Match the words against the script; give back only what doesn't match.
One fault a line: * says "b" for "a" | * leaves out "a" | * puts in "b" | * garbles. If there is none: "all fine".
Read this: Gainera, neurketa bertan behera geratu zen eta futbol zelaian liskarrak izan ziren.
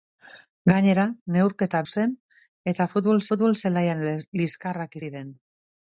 * leaves out "bertan behera geratu"
* puts in "futbol"
* leaves out "izan"